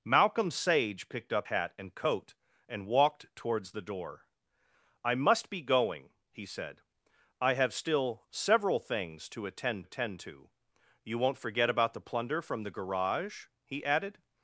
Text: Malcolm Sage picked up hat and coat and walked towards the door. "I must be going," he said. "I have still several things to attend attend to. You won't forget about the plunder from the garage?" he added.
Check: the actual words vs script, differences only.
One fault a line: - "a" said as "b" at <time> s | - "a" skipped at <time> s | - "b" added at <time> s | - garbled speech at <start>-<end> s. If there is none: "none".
none